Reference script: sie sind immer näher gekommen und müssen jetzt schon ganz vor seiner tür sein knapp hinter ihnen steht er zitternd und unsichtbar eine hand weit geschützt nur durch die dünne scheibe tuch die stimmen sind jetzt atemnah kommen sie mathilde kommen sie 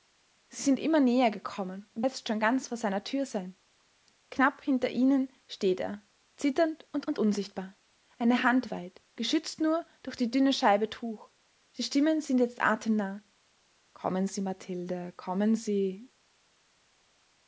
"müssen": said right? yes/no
no